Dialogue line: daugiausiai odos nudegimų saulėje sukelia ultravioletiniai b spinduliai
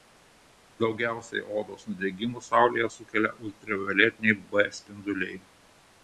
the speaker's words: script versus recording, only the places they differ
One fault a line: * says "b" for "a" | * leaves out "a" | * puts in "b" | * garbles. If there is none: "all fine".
all fine